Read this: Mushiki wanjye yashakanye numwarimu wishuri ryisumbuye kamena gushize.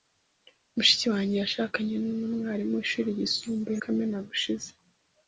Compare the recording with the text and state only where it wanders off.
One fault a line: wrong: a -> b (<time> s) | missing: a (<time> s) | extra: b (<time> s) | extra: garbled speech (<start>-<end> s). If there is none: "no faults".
no faults